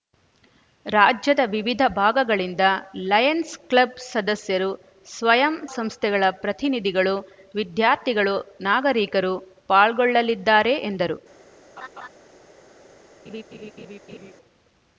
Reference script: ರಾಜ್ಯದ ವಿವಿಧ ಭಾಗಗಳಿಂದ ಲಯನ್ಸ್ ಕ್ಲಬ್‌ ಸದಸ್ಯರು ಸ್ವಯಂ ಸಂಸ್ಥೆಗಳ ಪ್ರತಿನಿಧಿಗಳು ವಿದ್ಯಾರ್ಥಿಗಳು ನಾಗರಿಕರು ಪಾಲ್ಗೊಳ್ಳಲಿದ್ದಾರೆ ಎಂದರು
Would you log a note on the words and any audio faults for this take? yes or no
yes